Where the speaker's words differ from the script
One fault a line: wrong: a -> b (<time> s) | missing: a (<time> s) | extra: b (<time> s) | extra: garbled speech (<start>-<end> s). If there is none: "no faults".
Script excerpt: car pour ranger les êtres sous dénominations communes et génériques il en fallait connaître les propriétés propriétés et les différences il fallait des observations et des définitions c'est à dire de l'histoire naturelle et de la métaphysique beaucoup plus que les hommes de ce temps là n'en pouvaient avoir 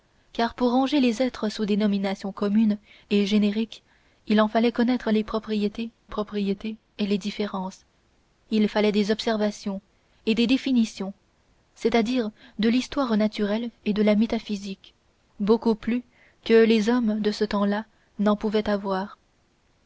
no faults